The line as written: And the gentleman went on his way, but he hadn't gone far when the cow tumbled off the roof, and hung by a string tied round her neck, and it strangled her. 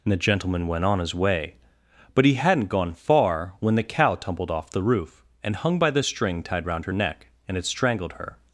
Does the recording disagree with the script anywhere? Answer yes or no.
yes